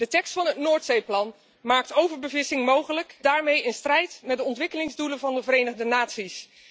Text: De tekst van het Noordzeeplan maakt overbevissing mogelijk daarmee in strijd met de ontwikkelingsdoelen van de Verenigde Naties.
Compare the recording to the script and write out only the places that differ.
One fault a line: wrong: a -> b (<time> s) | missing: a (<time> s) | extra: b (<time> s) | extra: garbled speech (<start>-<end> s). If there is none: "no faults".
no faults